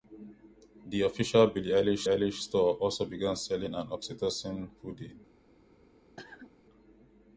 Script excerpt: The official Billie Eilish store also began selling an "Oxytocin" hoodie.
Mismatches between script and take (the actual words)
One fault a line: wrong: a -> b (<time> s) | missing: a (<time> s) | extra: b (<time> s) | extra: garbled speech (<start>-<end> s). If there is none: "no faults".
extra: Eilish (2.1 s)